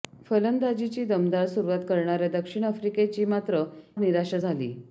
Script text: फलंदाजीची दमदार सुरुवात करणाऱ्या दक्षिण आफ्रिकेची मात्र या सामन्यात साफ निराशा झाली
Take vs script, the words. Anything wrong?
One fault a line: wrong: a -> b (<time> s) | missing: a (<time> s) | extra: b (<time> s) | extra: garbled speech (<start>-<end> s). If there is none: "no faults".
missing: या सामन्यात साफ (3.6 s)